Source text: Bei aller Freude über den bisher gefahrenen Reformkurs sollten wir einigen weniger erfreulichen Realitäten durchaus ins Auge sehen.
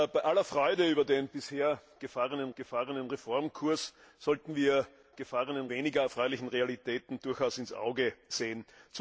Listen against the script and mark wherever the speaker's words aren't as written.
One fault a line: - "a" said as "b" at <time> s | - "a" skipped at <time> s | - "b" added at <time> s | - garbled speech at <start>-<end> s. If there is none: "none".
- "gefahrenen" added at 2.5 s
- "einigen" said as "gefahrenen" at 5.2 s